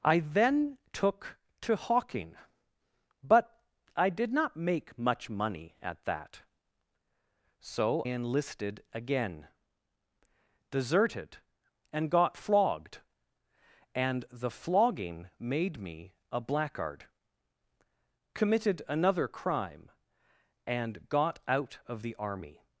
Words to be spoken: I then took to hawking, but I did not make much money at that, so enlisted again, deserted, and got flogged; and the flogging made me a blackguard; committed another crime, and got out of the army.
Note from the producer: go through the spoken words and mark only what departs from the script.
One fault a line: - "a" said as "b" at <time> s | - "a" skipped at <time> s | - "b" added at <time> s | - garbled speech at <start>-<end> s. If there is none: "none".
none